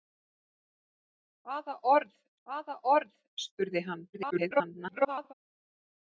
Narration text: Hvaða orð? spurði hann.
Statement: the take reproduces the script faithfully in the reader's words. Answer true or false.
false